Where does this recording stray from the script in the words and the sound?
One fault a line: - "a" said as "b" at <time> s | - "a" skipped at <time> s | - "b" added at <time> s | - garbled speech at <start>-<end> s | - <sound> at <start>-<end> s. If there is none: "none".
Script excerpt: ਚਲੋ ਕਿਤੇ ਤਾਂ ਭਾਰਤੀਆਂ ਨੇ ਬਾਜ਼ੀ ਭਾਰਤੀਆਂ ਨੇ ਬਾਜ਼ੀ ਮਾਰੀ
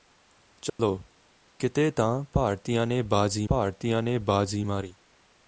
- dropout at 0.7-0.8 s